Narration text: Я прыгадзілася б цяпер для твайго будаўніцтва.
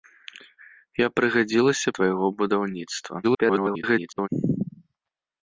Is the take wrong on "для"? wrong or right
wrong